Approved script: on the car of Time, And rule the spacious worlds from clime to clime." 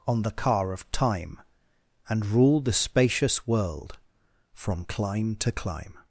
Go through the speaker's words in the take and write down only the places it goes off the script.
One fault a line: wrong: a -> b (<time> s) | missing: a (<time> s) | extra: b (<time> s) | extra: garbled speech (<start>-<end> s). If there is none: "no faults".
wrong: worlds -> world (3.5 s)